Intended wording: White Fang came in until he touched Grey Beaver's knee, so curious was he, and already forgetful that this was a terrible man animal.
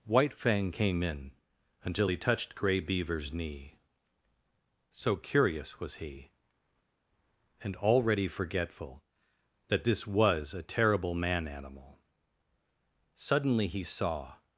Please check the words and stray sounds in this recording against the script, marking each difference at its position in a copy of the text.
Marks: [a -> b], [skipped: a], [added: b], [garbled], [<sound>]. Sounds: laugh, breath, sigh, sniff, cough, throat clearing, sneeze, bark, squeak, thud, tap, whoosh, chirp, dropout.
White Fang came in until he touched Grey Beaver's knee, so curious was he, and already forgetful that this was a terrible man animal. [added: Suddenly he saw]